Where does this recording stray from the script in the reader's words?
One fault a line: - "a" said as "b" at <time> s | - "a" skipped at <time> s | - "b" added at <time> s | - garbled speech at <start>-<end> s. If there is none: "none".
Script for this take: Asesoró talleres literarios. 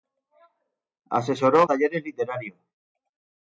none